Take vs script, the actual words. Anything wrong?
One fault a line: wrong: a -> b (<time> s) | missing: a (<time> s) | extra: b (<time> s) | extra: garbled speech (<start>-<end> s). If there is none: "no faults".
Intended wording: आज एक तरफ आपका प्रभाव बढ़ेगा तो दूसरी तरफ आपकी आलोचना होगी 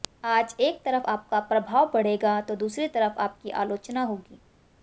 no faults